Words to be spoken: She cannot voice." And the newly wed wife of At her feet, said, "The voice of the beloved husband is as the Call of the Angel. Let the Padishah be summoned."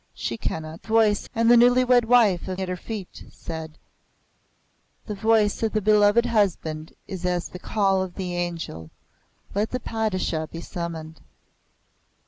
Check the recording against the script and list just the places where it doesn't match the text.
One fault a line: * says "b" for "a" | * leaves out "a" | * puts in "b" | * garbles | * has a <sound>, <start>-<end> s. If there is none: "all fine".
all fine